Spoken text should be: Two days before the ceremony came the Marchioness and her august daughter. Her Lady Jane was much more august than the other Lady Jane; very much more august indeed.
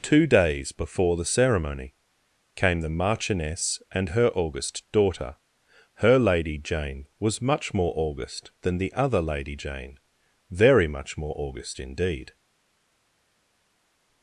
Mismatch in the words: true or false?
false